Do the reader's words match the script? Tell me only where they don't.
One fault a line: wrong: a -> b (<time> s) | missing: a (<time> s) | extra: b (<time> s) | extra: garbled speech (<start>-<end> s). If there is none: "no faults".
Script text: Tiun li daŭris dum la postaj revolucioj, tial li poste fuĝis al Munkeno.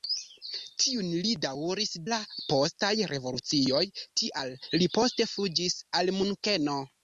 missing: dum (1.9 s)